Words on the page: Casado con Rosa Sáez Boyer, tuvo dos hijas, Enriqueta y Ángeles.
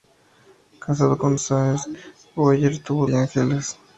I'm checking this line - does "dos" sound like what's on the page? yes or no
no